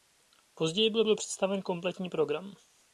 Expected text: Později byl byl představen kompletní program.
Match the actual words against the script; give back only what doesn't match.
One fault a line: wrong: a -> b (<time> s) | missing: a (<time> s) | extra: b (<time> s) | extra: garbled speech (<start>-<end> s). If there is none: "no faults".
no faults